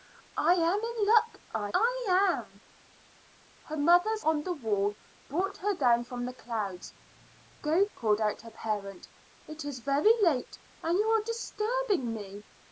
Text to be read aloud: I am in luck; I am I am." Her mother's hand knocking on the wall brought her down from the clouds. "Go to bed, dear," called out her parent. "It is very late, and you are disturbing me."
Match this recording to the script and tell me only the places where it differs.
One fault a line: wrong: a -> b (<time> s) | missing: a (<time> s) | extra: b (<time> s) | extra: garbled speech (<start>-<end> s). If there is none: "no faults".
missing: am (1.7 s)
missing: hand knocking (4.2 s)
missing: to bed dear (7.9 s)